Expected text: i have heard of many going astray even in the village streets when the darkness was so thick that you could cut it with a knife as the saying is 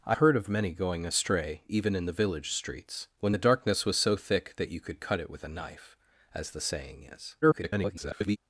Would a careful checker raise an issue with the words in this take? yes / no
yes